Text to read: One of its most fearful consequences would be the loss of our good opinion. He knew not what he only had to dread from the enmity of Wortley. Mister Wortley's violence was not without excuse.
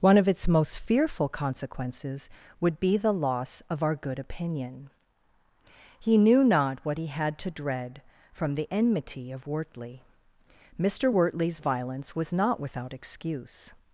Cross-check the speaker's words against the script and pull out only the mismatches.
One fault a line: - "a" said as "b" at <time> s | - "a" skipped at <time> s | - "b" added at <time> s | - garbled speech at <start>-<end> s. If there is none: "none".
- "only" skipped at 7.0 s